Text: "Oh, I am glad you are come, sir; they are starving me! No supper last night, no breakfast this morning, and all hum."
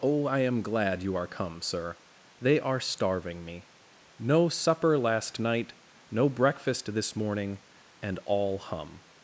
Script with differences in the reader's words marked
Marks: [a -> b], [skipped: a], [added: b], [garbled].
"Oh, I am glad you are come, sir; they are starving me! No supper last night, no breakfast this morning, and all hum."